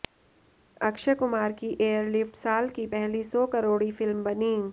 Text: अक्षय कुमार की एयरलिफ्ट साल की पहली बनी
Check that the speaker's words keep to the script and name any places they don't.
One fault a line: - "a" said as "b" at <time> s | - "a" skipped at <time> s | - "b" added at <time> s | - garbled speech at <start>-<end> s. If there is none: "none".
- "सौ करोड़ी फिल्म" added at 3.2 s